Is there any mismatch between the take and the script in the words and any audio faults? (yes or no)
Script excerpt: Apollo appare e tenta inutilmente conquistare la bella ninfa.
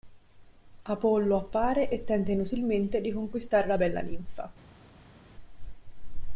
yes